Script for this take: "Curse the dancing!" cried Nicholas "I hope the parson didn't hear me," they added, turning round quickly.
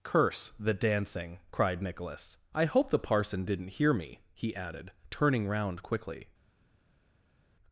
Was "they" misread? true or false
true